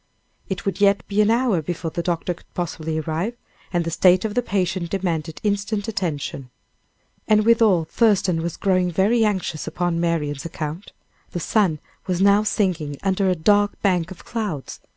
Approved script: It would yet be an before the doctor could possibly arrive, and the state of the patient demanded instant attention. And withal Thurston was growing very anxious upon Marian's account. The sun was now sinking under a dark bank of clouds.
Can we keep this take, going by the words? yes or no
no